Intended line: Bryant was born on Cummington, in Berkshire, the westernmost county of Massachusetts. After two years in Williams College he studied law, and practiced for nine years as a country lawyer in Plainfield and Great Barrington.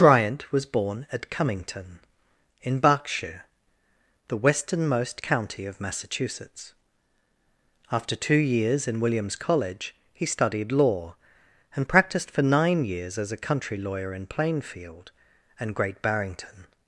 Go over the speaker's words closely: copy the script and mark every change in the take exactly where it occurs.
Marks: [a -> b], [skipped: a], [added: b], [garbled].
Bryant was born [on -> at] Cummington, in Berkshire, the westernmost county of Massachusetts. After two years in Williams College he studied law, and practiced for nine years as a country lawyer in Plainfield and Great Barrington.